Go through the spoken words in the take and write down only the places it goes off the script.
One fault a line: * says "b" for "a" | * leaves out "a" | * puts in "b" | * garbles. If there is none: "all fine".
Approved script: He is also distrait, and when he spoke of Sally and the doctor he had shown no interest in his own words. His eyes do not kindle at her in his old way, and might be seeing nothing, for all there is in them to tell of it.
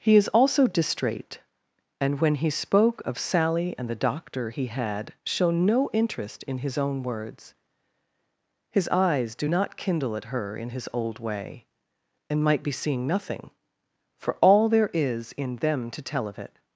all fine